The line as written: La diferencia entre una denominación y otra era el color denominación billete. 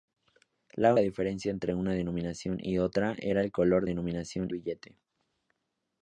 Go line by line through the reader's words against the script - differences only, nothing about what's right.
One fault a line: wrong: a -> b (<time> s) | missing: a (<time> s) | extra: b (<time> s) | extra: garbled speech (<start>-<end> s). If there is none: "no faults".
no faults